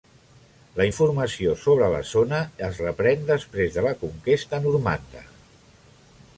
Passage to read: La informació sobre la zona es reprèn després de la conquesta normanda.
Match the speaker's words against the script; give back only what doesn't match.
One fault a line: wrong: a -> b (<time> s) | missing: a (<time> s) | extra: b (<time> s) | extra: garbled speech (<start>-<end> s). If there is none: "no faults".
no faults